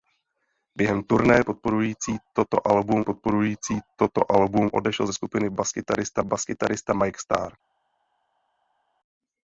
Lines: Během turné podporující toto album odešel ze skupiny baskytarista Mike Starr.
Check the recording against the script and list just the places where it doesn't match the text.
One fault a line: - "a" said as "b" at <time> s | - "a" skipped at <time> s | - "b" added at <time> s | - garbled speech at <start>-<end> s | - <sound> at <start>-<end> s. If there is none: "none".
- "podporující toto album" added at 3.0 s
- "baskytarista" added at 6.2 s